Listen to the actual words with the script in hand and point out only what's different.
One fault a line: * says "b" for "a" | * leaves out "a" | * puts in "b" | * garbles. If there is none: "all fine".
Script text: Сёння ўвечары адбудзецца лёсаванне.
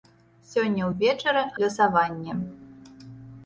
* leaves out "адбудзецца"